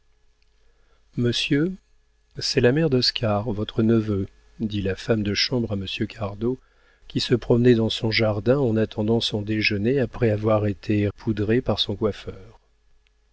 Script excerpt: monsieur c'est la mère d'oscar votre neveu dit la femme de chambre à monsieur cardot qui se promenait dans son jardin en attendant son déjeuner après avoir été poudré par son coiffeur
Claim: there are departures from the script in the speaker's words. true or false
false